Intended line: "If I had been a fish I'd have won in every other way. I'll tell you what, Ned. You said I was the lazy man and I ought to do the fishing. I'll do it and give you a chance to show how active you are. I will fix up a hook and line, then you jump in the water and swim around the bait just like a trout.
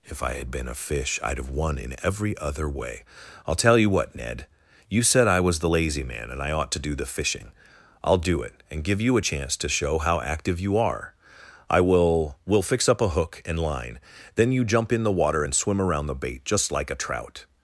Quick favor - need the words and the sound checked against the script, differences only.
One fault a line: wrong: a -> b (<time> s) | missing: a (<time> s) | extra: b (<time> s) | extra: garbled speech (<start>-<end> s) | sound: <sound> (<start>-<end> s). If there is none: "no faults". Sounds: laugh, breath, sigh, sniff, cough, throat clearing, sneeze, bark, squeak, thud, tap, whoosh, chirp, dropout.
extra: will (12.4 s)